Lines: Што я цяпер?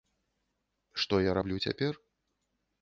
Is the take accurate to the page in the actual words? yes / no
no